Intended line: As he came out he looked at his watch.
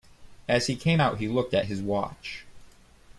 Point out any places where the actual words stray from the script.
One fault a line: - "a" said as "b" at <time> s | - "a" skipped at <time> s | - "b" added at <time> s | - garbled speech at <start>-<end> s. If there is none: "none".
none